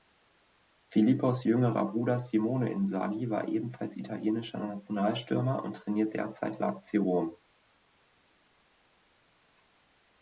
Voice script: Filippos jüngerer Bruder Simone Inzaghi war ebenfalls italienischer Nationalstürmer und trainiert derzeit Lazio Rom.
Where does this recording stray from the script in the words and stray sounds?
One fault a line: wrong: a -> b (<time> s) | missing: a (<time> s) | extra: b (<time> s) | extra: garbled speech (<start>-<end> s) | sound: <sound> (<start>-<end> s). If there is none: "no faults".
no faults